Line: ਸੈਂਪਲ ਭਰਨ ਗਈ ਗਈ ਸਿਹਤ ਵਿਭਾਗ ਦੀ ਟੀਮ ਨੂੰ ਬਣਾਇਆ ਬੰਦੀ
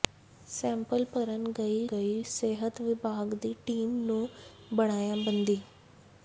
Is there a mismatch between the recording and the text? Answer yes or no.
no